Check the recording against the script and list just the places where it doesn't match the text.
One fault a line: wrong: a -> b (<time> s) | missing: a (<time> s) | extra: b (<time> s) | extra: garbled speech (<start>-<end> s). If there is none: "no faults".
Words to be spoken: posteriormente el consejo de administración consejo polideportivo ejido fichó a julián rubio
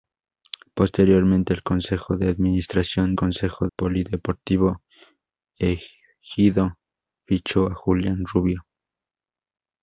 no faults